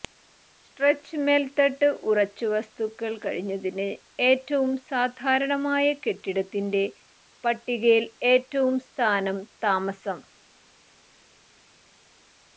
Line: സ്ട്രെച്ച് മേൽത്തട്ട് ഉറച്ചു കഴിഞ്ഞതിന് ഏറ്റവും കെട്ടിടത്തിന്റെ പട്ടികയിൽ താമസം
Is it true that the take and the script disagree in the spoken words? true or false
true